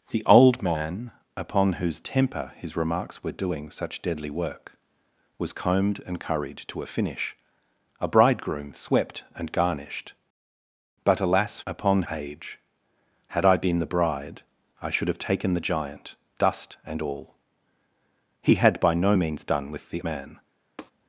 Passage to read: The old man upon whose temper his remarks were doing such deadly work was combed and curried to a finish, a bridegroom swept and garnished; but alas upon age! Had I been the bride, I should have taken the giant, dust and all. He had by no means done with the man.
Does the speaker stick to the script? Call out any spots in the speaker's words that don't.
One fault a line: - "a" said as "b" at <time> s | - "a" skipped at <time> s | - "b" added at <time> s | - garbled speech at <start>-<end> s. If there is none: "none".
none